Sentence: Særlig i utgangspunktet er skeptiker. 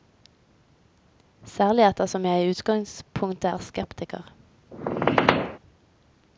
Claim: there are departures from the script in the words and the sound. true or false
true